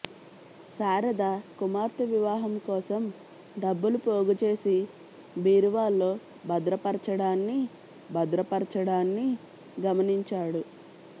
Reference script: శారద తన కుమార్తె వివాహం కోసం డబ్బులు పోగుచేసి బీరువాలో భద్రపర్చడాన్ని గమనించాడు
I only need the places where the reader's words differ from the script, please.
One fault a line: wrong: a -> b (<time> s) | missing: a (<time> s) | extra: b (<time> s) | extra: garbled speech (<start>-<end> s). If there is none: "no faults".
missing: తన (1.2 s)
extra: భద్రపర్చడాన్ని (8.1 s)